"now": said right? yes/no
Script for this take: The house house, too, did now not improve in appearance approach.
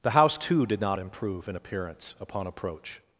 no